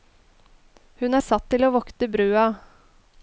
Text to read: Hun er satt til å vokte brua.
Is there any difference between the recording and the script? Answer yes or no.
no